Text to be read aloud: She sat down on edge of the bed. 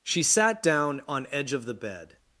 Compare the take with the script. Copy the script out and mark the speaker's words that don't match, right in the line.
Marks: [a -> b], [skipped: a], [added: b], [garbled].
She sat down on edge of the bed.